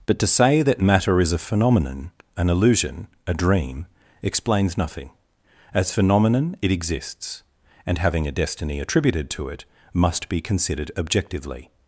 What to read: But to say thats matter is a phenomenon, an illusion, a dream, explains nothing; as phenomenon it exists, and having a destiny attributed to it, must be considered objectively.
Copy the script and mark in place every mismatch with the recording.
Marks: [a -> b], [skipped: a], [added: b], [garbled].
But to say [thats -> that] matter is a phenomenon, an illusion, a dream, explains nothing; as phenomenon it exists, and having a destiny attributed to it, must be considered objectively.